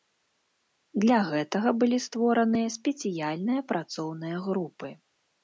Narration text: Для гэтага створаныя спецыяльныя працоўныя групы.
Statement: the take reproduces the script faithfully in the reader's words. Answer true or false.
false